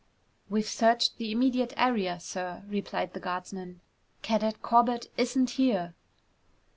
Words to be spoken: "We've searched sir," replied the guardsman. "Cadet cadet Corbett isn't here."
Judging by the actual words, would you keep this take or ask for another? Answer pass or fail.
fail